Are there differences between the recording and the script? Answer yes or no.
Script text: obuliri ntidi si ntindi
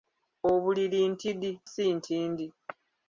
no